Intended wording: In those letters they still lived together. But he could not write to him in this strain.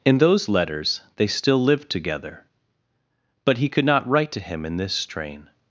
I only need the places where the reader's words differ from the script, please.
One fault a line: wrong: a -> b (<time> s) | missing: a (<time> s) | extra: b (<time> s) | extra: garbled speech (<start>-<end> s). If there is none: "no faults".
no faults